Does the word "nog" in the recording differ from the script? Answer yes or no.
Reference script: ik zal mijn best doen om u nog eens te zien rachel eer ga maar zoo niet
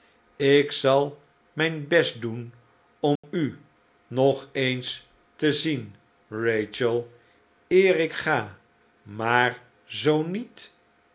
no